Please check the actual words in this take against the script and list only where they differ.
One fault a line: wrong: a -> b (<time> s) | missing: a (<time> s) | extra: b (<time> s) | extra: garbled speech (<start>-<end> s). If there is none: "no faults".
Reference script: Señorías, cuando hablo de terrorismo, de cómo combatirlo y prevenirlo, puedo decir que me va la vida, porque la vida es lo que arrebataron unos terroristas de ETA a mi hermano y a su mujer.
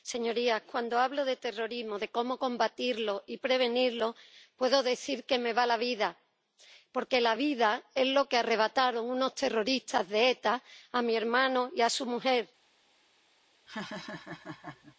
no faults